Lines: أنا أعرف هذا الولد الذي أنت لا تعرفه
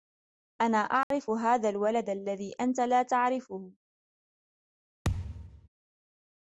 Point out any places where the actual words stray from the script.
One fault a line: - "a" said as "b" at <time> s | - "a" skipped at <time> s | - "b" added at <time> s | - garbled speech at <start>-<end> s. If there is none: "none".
none